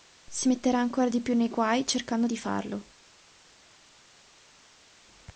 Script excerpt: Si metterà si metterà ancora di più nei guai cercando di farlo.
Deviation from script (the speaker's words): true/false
true